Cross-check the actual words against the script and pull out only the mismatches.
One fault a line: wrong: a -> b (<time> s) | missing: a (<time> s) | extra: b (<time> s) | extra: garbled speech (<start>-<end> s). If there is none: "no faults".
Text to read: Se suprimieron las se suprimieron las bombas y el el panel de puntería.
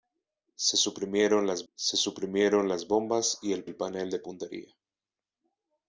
no faults